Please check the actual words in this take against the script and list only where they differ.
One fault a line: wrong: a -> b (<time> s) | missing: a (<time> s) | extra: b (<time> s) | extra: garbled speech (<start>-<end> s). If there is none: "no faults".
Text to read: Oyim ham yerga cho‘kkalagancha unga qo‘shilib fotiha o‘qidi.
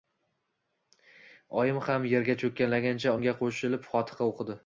no faults